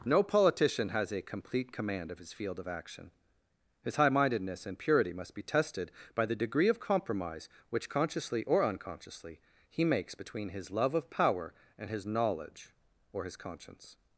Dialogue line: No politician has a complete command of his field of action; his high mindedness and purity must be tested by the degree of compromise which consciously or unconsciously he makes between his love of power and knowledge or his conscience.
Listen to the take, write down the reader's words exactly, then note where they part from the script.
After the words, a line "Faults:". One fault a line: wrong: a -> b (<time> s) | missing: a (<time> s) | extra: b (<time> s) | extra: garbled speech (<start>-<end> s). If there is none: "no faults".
No politician has a complete command of his field of action; his high mindedness and purity must be tested by the degree of compromise which consciously or unconsciously he makes between his love of power and his knowledge or his conscience.
Faults:
extra: his (11.9 s)